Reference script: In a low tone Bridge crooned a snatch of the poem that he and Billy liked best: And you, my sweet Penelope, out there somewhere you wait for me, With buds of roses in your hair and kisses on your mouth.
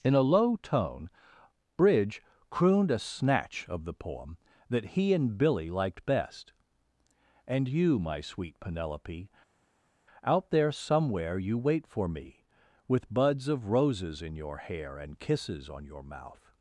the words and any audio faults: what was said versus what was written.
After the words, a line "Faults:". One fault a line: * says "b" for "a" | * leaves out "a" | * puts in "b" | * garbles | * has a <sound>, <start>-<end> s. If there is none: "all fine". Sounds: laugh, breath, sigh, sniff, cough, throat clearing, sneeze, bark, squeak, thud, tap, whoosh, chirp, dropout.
In a low tone Bridge crooned a snatch of the poem that he and Billy liked best: And you, my sweet Penelope, out there somewhere you wait for me, With buds of roses in your hair and kisses on your mouth.
Faults:
all fine